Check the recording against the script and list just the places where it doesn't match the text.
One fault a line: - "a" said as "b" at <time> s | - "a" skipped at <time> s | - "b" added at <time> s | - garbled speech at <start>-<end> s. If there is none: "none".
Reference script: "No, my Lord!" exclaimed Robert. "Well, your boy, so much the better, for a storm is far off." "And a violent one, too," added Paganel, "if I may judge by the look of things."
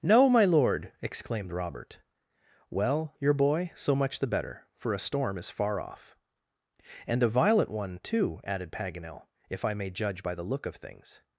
none